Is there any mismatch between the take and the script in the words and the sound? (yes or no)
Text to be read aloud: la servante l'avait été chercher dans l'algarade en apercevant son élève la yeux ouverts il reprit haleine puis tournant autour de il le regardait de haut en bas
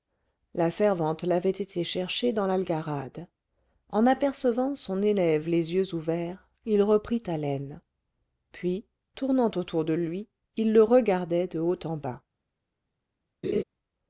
yes